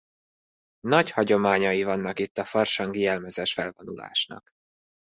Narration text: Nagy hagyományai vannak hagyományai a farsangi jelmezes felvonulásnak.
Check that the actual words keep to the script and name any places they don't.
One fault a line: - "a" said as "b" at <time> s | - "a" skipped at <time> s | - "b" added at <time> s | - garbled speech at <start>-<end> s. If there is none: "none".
- "hagyományai" said as "itt" at 2.2 s